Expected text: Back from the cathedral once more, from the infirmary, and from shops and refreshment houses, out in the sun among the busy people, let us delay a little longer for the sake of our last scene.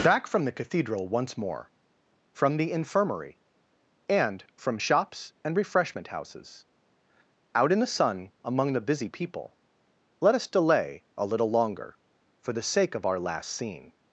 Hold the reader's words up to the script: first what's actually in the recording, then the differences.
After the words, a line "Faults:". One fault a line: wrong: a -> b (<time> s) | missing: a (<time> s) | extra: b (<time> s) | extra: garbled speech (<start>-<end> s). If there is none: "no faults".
Back from the cathedral once more, from the infirmary, and from shops and refreshment houses, out in the sun among the busy people, let us delay a little longer for the sake of our last scene.
Faults:
no faults